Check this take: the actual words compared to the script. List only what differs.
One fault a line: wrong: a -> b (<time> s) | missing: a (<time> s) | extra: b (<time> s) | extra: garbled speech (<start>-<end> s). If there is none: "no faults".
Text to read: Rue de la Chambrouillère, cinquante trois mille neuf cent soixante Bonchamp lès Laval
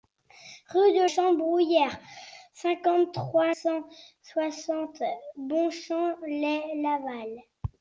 missing: la (1.1 s)
missing: mille neuf (3.5 s)